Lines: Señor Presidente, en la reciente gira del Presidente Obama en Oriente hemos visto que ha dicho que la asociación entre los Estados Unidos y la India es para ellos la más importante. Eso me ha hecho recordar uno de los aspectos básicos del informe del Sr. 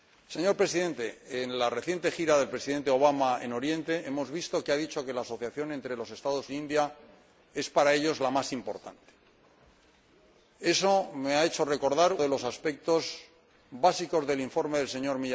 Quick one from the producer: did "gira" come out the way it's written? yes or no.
yes